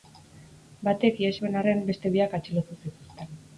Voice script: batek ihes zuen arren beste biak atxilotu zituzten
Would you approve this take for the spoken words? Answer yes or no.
yes